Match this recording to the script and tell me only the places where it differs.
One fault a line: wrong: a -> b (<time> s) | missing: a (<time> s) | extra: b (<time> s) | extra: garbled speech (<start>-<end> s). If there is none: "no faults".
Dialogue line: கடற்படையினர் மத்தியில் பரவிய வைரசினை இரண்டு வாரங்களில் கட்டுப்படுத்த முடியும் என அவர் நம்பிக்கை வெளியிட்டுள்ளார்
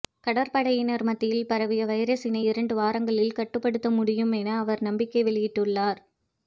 no faults